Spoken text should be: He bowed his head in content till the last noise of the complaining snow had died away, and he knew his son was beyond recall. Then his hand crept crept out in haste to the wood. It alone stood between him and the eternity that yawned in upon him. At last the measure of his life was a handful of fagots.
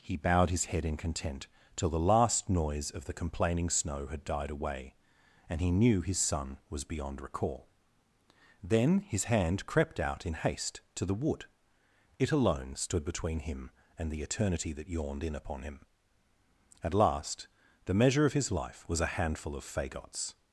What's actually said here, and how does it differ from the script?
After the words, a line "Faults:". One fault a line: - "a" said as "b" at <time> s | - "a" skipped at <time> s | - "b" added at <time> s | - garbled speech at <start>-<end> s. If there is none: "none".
He bowed his head in content till the last noise of the complaining snow had died away, and he knew his son was beyond recall. Then his hand crept out in haste to the wood. It alone stood between him and the eternity that yawned in upon him. At last the measure of his life was a handful of fagots.
Faults:
- "crept" skipped at 10.0 s